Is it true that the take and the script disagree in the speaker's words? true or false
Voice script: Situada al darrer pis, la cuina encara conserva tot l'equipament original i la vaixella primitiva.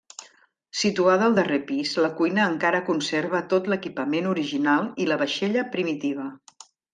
false